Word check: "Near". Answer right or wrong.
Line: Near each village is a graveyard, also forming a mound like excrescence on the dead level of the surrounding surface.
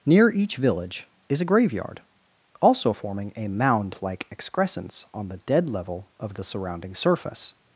right